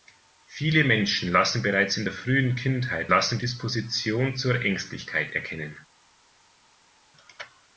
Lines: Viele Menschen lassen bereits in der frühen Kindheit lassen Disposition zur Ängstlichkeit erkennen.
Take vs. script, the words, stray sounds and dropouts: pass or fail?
pass